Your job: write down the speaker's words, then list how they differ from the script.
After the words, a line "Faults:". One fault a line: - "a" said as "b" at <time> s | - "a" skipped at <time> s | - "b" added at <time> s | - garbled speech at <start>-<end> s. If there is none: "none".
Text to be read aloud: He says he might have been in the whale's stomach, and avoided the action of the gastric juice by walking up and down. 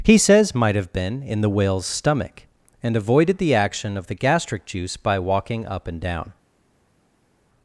He says might have been in the whale's stomach, and avoided the action of the gastric juice by walking up and down.
Faults:
- "he" skipped at 0.6 s